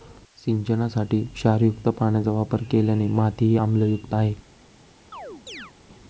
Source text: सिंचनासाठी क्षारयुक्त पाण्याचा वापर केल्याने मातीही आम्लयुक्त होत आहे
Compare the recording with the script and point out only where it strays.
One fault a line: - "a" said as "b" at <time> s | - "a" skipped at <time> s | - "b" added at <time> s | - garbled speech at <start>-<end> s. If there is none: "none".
- "होत" skipped at 4.1 s